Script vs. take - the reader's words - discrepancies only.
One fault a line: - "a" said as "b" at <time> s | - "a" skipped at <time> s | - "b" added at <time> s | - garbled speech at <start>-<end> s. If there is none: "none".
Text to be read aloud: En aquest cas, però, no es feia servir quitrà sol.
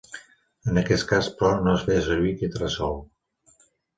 none